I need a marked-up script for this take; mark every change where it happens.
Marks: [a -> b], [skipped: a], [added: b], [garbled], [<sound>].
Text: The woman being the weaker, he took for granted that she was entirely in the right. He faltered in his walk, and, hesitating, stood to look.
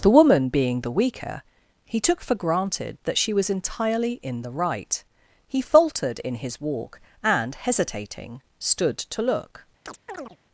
The woman being the weaker, he took for granted that she was entirely in the right. He faltered in his walk, and, hesitating, stood to look. [chirp]